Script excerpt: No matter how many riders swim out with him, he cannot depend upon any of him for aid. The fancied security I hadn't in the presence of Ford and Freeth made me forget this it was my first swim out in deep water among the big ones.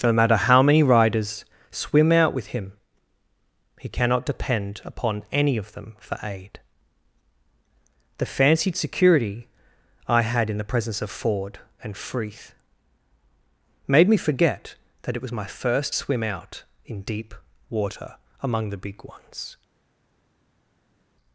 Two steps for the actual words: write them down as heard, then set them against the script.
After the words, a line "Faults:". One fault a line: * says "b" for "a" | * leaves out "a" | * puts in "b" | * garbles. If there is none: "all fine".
No matter how many riders swim out with him, he cannot depend upon any of them for aid. The fancied security I had in the presence of Ford and Freeth made me forget that it was my first swim out in deep water among the big ones.
Faults:
* says "them" for "him"
* says "had" for "hadn't"
* says "that" for "this"